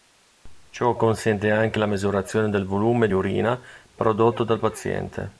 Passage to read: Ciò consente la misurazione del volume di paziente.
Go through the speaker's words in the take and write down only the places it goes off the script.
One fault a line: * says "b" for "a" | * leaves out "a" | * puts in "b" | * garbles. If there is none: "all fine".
* puts in "anche"
* puts in "urina prodotto dal"